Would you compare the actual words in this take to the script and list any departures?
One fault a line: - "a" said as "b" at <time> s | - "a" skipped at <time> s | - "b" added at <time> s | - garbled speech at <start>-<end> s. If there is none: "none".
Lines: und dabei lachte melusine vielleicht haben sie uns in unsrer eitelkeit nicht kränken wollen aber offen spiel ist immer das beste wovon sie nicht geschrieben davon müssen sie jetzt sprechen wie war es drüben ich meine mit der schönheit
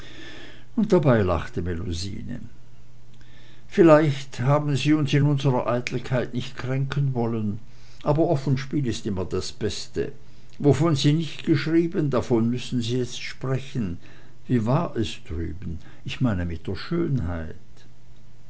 none